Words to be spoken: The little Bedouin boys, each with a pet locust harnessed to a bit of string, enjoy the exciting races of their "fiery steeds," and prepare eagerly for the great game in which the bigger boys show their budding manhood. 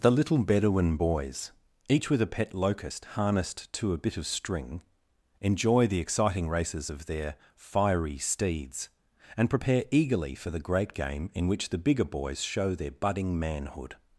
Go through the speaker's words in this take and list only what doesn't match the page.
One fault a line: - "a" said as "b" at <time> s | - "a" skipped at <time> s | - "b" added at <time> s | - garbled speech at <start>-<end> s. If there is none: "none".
none